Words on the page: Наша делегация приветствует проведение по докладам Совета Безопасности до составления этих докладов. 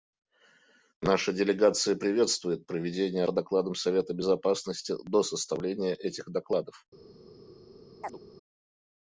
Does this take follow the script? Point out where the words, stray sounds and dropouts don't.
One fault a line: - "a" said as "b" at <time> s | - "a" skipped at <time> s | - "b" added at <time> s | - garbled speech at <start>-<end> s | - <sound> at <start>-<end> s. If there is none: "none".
- chirp at 8.0-8.2 s